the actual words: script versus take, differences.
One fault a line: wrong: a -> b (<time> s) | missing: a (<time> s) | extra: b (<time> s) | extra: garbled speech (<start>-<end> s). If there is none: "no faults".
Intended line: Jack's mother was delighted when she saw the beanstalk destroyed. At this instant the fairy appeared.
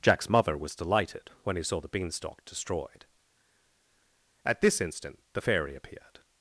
wrong: she -> he (1.6 s)